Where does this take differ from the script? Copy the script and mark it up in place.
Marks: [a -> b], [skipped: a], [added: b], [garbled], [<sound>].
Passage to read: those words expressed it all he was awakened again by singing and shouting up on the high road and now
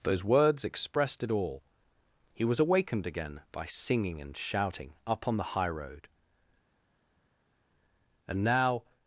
those words expressed it all he was awakened again by singing and shouting up on the high road and now